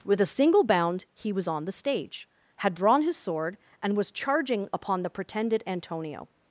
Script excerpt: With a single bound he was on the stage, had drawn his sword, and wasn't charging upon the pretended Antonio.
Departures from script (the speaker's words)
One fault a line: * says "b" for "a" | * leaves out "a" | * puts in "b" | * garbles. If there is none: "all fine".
* says "was" for "wasn't"